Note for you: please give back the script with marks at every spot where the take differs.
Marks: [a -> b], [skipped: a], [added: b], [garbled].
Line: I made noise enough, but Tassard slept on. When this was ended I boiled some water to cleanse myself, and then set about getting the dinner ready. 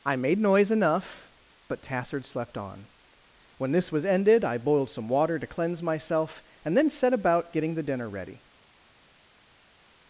I made noise enough, but Tassard slept on. When this was ended I boiled some water to cleanse myself, and then set about getting the dinner ready.